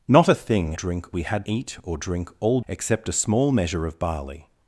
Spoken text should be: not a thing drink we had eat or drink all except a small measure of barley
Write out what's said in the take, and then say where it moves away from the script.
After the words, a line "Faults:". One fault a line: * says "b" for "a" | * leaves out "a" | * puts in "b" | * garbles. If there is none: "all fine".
not a thing drink we had eat or drink all except a small measure of barley
Faults:
all fine